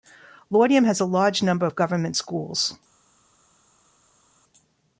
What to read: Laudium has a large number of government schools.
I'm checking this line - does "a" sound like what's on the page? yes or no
yes